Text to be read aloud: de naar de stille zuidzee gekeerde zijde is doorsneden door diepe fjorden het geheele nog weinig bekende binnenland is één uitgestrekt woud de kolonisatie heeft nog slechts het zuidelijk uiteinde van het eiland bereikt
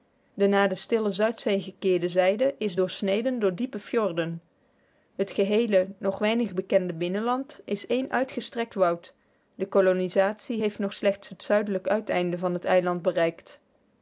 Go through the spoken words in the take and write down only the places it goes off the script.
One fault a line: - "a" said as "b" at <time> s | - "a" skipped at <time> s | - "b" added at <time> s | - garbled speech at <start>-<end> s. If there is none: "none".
none